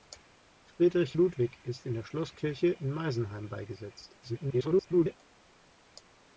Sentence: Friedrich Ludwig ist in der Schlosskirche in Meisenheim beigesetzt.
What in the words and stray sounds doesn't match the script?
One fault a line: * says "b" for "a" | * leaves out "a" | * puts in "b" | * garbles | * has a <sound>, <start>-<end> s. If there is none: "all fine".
* garbles